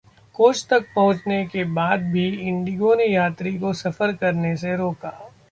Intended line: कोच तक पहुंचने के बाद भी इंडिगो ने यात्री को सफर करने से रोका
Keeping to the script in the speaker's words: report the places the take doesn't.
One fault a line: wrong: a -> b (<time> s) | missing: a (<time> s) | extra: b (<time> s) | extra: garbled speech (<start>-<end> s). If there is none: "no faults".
no faults